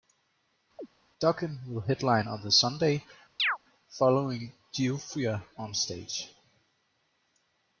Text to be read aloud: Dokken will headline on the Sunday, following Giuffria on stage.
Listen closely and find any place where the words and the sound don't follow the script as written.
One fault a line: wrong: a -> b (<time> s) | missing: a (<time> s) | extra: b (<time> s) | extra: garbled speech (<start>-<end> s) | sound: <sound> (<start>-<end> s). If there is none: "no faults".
sound: chirp (0.8-0.9 s)
sound: chirp (3.4-3.6 s)